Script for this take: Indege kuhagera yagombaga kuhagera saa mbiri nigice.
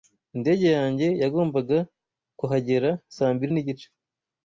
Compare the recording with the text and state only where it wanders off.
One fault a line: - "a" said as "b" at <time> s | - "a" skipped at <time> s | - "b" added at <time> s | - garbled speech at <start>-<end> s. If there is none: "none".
- "kuhagera" said as "yanjye" at 0.8 s